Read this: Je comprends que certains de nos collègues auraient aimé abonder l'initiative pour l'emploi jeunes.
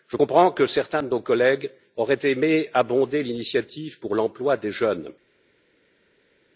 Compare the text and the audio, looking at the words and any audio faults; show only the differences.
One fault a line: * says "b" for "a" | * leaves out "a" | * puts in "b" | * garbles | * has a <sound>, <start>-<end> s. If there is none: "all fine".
* puts in "des"